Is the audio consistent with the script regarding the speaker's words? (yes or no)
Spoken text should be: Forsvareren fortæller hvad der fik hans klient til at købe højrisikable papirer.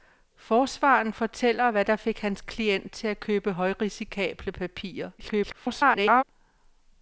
no